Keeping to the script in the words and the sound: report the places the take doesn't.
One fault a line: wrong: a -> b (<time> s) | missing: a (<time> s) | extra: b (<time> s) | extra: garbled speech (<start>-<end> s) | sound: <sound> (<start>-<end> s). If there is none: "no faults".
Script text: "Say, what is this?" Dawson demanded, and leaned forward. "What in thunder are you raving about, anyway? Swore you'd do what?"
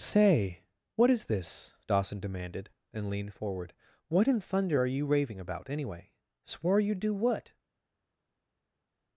no faults